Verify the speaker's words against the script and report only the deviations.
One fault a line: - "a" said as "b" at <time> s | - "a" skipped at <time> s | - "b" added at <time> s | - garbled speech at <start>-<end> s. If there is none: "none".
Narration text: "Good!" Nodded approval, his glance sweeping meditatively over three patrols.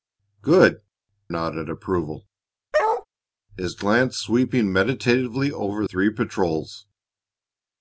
none